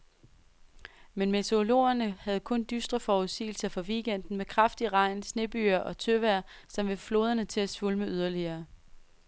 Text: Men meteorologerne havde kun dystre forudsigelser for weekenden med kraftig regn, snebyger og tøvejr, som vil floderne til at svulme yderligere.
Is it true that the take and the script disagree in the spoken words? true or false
false